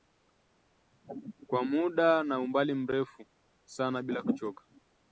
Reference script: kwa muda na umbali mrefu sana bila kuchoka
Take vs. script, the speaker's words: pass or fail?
pass